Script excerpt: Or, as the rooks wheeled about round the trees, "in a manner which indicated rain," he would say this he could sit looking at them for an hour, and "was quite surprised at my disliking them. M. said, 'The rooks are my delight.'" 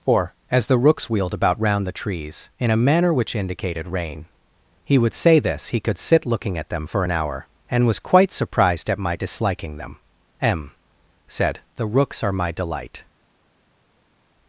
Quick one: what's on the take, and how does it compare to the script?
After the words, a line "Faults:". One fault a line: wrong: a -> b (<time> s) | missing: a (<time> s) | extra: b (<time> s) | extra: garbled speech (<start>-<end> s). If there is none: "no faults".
Or, as the rooks wheeled about round the trees, "in a manner which indicated rain," he would say this he could sit looking at them for an hour, and "was quite surprised at my disliking them. M. said, 'The rooks are my delight.'"
Faults:
no faults